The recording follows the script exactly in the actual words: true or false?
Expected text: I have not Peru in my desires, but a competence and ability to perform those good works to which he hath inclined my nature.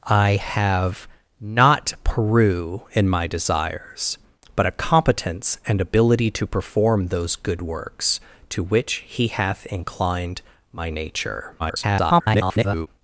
false